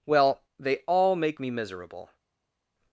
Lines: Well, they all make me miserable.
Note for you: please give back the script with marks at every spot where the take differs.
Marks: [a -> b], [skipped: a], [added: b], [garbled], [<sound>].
Well, they all make me miserable.